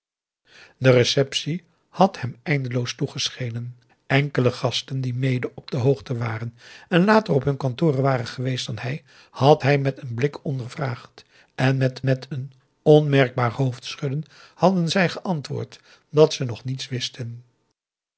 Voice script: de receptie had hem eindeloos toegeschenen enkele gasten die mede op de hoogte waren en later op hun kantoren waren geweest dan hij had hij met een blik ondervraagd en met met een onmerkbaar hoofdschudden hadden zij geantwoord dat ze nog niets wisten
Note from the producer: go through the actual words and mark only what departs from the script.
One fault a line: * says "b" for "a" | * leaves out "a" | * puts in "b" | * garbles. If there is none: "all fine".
all fine